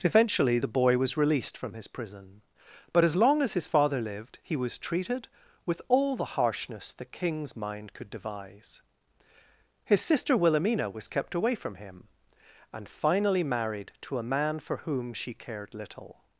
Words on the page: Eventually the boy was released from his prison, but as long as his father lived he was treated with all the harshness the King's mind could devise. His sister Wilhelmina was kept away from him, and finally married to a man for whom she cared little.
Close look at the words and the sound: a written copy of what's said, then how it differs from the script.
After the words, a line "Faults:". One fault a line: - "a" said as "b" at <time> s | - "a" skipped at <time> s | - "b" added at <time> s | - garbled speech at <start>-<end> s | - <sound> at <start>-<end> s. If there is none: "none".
Eventually the boy was released from his prison, but as long as his father lived he was treated with all the harshness the King's mind could devise. His sister Wilhelmina was kept away from him, and finally married to a man for whom she cared little.
Faults:
none